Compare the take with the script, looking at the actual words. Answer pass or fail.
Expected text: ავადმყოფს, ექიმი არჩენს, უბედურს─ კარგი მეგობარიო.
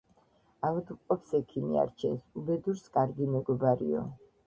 pass